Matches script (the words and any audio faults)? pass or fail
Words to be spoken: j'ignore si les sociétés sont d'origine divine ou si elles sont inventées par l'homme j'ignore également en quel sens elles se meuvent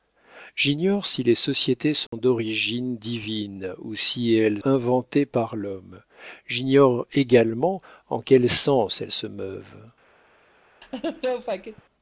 fail